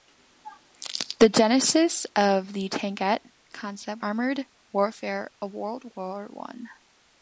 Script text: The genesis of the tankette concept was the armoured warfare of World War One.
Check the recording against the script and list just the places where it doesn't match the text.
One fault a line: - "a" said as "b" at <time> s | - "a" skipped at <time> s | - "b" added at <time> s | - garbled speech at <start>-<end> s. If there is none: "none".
- "was the" skipped at 4.0 s